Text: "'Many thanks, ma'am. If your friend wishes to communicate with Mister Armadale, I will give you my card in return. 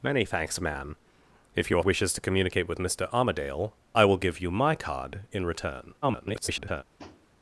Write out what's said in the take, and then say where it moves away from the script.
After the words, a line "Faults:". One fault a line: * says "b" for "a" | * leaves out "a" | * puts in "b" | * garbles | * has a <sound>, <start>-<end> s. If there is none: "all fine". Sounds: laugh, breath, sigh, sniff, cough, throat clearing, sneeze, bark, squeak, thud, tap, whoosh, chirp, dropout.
"'Many thanks, ma'am. If your wishes to communicate with Mister Armadale, I will give you my card in return. [garbled]
Faults:
* leaves out "friend"
* garbles
* has a tap, 7.0-7.3 s